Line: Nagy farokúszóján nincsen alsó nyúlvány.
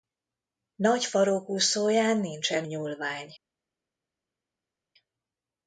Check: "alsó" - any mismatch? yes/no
yes